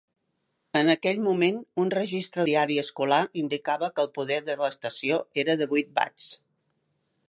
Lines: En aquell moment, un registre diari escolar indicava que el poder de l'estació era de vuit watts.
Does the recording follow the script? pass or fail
pass